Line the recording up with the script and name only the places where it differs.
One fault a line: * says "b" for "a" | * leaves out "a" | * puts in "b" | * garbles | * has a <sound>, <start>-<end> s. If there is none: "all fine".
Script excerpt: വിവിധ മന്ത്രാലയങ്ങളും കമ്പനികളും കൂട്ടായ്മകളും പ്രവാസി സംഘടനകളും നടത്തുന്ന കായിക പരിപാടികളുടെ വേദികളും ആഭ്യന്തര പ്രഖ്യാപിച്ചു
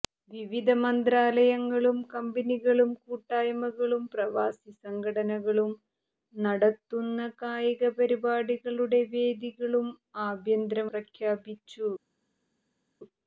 all fine